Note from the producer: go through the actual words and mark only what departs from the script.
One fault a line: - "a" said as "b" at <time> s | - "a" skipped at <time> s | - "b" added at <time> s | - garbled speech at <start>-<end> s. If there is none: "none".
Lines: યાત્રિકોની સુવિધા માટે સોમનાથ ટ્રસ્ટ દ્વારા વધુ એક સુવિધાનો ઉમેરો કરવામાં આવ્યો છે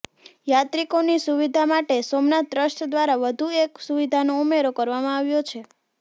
none